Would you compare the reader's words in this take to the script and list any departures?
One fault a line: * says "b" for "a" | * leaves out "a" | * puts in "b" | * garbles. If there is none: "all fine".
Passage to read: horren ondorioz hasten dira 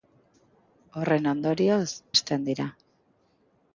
all fine